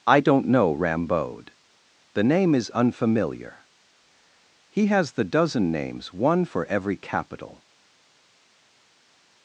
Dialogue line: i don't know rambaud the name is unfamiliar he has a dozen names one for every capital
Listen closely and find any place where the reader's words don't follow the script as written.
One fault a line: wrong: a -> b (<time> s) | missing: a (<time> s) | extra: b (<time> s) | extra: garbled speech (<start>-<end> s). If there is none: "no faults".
wrong: a -> the (5.1 s)